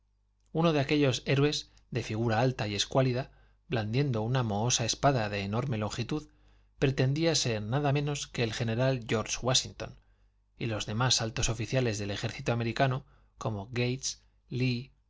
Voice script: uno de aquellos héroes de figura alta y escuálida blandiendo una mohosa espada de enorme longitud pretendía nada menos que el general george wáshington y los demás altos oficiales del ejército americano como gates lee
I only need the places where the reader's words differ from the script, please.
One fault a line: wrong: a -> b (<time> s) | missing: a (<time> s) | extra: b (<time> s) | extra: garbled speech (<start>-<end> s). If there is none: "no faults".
extra: ser (7.3 s)